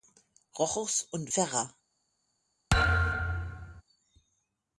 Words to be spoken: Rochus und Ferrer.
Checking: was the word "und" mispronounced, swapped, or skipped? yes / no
no